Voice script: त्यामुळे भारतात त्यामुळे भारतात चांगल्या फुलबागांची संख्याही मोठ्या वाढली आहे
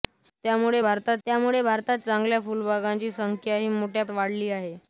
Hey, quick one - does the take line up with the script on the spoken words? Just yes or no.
yes